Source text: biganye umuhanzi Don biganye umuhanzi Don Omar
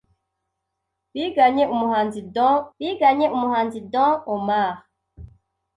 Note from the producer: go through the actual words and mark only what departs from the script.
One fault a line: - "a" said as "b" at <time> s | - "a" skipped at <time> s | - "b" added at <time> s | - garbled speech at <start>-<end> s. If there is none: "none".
none